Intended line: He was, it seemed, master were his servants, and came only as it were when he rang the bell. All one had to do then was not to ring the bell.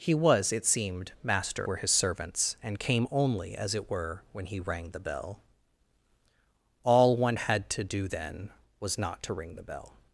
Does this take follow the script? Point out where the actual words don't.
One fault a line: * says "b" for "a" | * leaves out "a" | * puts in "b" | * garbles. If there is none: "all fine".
all fine